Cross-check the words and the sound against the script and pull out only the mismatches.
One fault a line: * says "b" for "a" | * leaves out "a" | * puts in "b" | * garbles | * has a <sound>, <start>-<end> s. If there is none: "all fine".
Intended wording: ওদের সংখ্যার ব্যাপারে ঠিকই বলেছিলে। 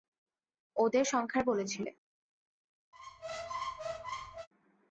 * leaves out "ব্যাপারে ঠিকই"
* has a squeak, 2.9-4.5 s